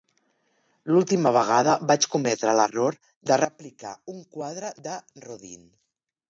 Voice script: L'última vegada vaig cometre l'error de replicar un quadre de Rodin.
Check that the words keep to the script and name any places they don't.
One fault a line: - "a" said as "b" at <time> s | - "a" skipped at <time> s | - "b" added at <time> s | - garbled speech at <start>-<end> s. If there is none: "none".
none